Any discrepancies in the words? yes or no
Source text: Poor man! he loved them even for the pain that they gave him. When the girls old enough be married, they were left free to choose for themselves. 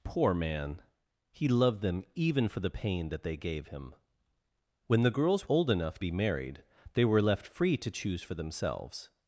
no